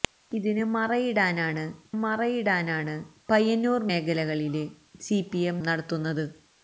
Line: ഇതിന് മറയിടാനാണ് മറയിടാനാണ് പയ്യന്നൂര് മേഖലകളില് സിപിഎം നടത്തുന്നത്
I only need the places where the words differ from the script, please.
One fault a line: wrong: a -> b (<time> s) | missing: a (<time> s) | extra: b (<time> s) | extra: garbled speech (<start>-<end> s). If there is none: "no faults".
no faults